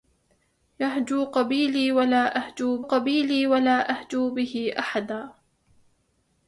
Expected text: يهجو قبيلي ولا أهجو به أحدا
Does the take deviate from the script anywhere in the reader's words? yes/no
yes